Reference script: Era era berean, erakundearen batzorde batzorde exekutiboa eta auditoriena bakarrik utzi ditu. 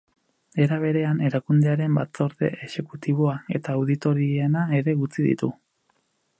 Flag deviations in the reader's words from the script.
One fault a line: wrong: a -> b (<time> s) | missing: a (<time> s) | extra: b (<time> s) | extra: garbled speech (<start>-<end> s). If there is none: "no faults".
missing: era (0.8 s)
missing: batzorde (2.5 s)
wrong: bakarrik -> ere (4.8 s)